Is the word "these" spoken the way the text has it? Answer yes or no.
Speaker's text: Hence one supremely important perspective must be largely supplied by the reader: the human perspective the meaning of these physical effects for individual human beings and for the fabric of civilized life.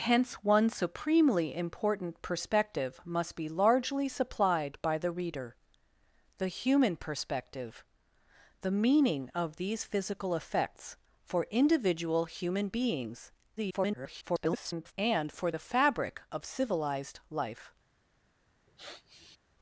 yes